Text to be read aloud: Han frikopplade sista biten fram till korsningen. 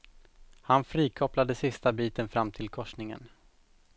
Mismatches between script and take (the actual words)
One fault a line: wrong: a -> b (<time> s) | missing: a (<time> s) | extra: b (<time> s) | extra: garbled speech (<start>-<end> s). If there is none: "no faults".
no faults